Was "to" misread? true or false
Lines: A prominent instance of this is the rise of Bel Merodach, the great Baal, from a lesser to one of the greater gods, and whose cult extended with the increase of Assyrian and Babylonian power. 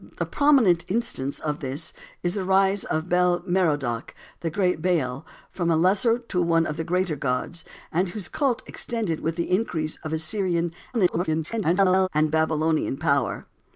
false